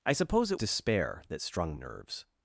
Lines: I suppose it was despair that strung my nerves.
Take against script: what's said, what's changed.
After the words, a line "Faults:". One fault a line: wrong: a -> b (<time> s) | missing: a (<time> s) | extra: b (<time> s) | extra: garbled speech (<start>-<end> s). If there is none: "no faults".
I suppose it despair that strung nerves.
Faults:
missing: was (0.6 s)
missing: my (1.7 s)